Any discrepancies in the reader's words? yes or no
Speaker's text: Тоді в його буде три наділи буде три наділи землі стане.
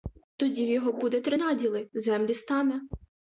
yes